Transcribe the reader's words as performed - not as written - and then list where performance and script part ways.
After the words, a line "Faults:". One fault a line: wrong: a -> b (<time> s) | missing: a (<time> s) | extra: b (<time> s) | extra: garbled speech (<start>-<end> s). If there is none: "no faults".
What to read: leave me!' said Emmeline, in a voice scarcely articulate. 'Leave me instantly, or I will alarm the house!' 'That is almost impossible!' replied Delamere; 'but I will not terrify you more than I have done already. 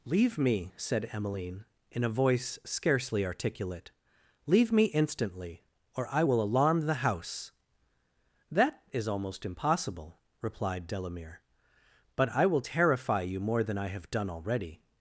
leave me!' said Emmeline, in a voice scarcely articulate. 'Leave me instantly, or I will alarm the house!' 'That is almost impossible!' replied Delamere; 'but I will terrify you more than I have done already.
Faults:
missing: not (12.6 s)